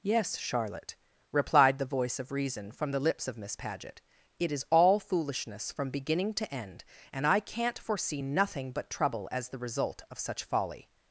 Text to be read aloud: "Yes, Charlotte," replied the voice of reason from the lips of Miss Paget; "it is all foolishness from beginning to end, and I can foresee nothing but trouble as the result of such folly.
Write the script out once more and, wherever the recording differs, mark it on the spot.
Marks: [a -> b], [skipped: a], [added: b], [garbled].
"Yes, Charlotte," replied the voice of reason from the lips of Miss Paget; "it is all foolishness from beginning to end, and I [can -> can't] foresee nothing but trouble as the result of such folly.